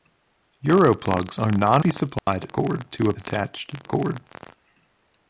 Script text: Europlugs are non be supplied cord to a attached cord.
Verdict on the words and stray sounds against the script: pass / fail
fail